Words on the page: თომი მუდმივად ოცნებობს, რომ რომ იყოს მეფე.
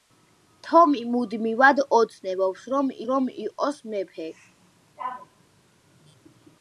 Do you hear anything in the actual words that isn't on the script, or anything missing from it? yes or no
no